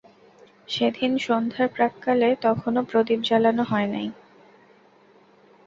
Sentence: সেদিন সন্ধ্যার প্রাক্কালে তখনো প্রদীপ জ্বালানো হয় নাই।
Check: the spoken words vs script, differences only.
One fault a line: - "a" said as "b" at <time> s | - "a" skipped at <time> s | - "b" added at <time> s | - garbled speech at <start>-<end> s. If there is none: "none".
none